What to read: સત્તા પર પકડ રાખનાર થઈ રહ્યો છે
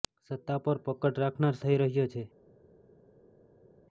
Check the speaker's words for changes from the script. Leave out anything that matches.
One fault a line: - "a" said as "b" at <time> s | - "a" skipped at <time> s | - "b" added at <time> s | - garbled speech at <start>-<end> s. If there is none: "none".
none